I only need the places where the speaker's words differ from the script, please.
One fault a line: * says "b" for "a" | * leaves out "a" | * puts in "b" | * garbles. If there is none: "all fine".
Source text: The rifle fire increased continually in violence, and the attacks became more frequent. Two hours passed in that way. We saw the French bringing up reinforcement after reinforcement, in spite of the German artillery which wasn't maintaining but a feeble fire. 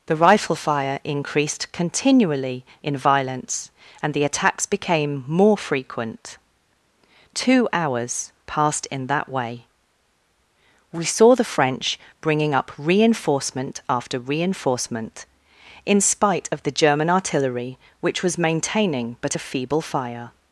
* says "was" for "wasn't"